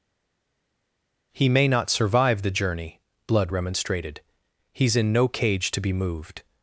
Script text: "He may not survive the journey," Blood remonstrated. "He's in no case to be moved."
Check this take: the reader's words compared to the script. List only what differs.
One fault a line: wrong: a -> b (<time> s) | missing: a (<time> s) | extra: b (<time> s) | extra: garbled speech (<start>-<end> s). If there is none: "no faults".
wrong: case -> cage (5.3 s)